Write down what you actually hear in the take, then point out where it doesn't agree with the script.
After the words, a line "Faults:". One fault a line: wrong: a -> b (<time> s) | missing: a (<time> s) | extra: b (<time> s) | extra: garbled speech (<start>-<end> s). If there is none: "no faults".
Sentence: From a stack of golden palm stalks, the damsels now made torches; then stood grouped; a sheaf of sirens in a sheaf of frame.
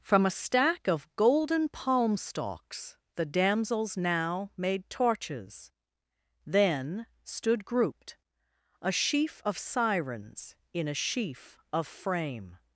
From a stack of golden palm stalks, the damsels now made torches; then stood grouped; a sheaf of sirens in a sheaf of frame.
Faults:
no faults